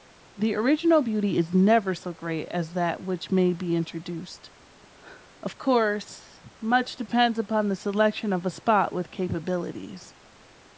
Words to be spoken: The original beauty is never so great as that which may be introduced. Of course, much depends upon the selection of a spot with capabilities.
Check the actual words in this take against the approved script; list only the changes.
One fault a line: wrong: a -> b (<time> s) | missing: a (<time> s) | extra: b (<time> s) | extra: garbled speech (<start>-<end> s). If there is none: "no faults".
no faults